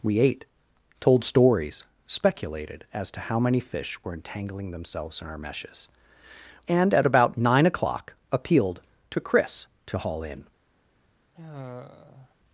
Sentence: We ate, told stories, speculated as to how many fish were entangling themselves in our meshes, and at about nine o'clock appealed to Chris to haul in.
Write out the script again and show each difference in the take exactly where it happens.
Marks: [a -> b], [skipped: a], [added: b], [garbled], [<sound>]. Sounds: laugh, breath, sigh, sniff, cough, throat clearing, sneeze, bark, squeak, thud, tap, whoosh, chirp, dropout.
We ate, told stories, speculated as to how many fish were entangling themselves in our meshes, and at about nine o'clock appealed to Chris to haul in. [sigh]